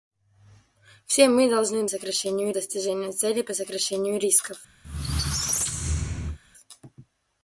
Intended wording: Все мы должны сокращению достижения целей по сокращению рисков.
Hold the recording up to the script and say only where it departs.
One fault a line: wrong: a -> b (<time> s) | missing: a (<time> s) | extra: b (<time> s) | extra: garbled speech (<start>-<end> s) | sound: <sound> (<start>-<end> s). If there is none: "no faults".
sound: squeak (4.8-6.4 s)